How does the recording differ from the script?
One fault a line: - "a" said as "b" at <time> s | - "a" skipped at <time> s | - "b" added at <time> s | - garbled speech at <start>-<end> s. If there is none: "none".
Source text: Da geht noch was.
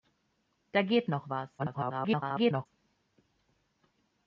- garbled speech at 1.6-2.7 s